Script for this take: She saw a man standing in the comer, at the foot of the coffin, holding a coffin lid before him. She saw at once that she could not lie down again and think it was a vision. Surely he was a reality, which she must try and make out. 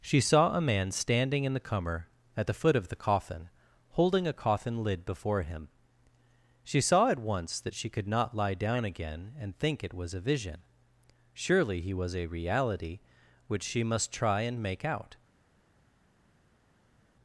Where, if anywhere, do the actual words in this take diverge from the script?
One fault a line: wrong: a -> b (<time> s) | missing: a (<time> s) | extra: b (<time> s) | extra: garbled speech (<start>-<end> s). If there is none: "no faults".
no faults